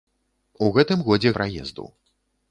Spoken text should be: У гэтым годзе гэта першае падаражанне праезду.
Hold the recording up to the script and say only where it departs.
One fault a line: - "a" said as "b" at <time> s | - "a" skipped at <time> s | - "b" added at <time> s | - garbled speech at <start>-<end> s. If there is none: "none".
- "гэта першае падаражанне" skipped at 1.3 s